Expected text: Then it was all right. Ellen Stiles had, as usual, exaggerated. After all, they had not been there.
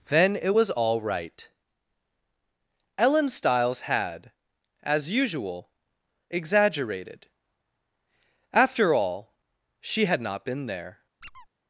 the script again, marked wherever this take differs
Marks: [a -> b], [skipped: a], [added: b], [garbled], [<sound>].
Then it was all right. Ellen Stiles had, as usual, exaggerated. After all, [they -> she] had not been there. [squeak]